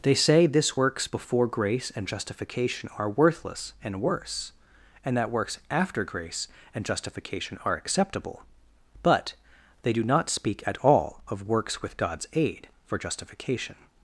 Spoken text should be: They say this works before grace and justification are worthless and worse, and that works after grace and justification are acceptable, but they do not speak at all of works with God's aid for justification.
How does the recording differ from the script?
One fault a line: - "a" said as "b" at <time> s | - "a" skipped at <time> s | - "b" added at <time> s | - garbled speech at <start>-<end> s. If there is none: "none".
none